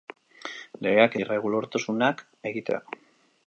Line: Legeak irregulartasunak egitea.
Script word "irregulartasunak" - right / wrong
right